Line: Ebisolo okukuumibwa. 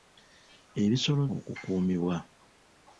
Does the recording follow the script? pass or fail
pass